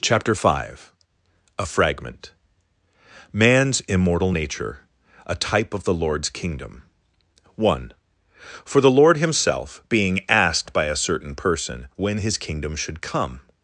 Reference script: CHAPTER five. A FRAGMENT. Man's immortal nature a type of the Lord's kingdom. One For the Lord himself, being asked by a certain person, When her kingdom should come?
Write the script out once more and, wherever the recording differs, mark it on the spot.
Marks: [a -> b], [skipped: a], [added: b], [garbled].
CHAPTER five. A FRAGMENT. Man's immortal nature a type of the Lord's kingdom. One For the Lord himself, being asked by a certain person, When [her -> his] kingdom should come?